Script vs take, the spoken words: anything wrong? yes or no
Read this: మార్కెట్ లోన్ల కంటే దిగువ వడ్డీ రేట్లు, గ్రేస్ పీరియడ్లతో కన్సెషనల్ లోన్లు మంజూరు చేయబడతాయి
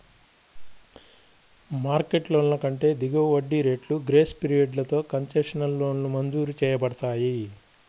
no